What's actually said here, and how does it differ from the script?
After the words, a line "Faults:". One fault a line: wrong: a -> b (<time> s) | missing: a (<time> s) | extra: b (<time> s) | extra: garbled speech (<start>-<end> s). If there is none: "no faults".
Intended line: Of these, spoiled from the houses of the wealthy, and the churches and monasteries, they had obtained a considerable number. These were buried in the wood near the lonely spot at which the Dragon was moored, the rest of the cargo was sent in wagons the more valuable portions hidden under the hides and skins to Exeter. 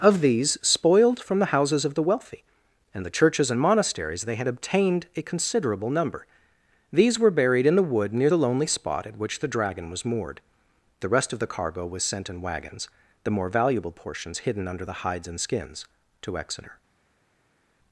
Of these, spoiled from the houses of the wealthy, and the churches and monasteries, they had obtained a considerable number. These were buried in the wood near the lonely spot at which the Dragon was moored, the rest of the cargo was sent in wagons the more valuable portions hidden under the hides and skins to Exeter.
Faults:
no faults